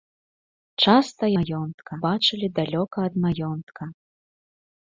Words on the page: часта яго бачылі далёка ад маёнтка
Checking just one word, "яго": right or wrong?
wrong